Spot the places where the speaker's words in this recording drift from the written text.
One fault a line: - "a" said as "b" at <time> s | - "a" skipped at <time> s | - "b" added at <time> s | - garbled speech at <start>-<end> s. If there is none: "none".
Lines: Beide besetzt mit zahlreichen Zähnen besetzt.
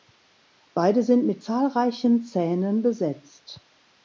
- "besetzt" said as "sind" at 1.0 s